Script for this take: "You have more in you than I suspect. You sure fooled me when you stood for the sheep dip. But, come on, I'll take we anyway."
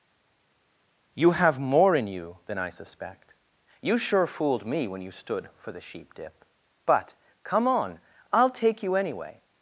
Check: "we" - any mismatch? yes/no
yes